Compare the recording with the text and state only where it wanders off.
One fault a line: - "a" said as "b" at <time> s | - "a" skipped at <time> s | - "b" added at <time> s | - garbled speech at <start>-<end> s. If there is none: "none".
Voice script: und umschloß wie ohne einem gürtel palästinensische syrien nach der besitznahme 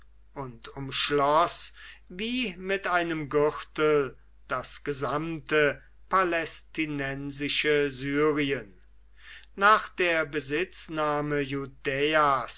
- "ohne" said as "mit" at 2.6 s
- "das gesamte" added at 4.5 s